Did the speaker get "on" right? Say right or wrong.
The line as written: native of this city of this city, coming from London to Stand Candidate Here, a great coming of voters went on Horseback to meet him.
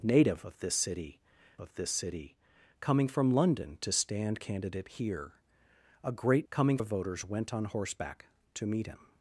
right